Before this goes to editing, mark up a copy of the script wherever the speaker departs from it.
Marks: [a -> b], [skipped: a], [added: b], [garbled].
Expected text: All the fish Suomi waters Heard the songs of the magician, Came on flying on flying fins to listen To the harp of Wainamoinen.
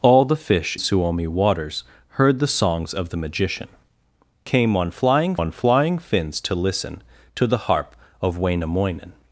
All the fish Suomi waters Heard the songs of the magician, Came on flying on flying fins to listen To the harp of Wainamoinen.